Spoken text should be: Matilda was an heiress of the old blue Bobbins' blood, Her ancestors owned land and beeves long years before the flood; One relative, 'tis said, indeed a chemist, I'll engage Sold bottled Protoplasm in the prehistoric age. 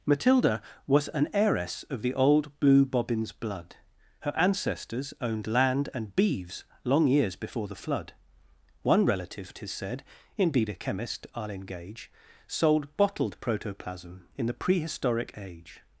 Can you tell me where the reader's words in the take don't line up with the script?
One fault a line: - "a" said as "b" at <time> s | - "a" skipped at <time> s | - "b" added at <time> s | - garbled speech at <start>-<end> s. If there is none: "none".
none